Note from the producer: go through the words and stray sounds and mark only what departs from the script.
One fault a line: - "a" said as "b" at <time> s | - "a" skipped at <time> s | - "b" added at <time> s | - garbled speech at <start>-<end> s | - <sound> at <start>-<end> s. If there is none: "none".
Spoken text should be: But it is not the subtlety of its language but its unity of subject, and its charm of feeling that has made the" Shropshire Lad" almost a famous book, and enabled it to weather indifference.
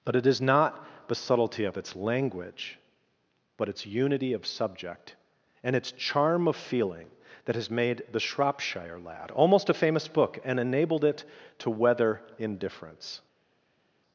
none